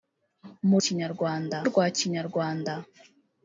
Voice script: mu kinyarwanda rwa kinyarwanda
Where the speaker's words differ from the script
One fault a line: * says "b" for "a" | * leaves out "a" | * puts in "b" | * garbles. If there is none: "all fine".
all fine